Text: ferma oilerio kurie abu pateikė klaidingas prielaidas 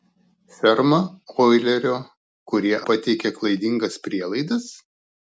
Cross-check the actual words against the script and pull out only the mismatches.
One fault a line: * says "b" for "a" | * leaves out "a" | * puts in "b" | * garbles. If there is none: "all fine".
* leaves out "abu"